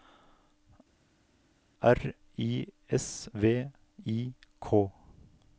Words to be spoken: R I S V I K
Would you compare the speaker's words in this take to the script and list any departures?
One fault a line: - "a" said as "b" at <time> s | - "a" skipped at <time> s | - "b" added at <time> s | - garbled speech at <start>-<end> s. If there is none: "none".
none